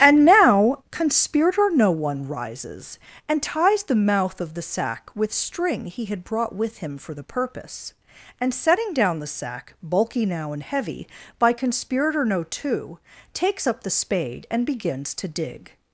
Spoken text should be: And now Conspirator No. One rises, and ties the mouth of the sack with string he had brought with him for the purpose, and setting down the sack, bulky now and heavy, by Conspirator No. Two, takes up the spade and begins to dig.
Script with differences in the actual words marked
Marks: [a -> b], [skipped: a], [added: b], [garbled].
And now Conspirator No. One rises, and ties the mouth of the sack with string he had brought with him for the purpose, and setting down the sack, bulky now and heavy, by Conspirator No. Two, takes up the spade and begins to dig.